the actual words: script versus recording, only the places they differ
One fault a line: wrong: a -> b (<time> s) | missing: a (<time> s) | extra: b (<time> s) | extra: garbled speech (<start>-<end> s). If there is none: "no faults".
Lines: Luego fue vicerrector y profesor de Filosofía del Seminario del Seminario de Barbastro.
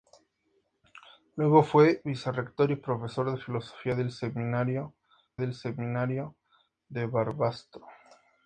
no faults